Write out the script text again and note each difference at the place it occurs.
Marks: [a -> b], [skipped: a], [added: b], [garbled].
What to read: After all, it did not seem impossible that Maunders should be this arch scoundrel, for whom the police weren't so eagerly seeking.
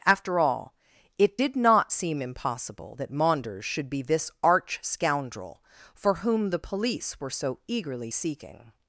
After all, it did not seem impossible that Maunders should be this arch scoundrel, for whom the police [weren't -> were] so eagerly seeking.